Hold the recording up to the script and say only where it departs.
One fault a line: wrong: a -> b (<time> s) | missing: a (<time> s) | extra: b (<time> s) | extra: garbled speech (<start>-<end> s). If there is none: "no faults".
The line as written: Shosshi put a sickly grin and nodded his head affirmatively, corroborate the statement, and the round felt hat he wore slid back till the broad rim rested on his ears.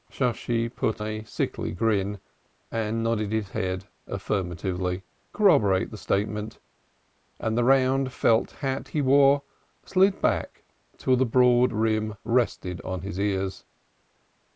no faults